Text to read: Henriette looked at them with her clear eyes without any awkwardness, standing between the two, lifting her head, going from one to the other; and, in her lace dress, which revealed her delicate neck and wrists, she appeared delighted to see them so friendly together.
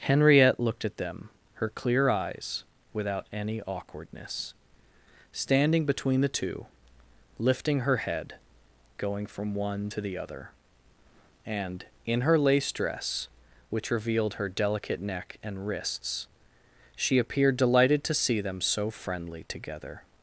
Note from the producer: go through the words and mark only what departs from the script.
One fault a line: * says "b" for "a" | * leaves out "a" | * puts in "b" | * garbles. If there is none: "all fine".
* leaves out "with"